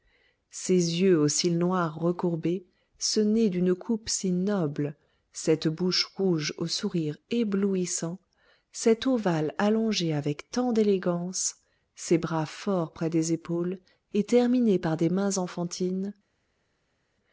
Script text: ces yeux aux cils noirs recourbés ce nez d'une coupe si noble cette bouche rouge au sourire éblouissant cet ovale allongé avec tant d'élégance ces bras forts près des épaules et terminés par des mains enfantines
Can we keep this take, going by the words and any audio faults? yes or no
yes